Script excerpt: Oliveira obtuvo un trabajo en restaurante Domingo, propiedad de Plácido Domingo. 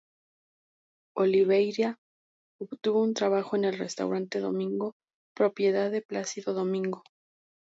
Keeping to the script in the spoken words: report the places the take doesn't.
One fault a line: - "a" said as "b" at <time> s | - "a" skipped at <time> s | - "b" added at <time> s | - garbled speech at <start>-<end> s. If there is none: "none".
- "el" added at 3.7 s